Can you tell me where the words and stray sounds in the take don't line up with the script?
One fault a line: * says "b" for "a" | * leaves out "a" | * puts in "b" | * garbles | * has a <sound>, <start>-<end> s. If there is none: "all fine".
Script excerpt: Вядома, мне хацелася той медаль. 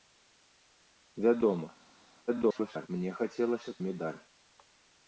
* garbles
* leaves out "той"